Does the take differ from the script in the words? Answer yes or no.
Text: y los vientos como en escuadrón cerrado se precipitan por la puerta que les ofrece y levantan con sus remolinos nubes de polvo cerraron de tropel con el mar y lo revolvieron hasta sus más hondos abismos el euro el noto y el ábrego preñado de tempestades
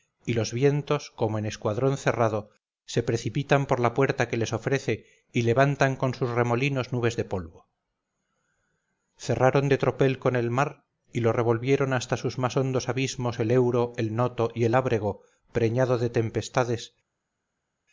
no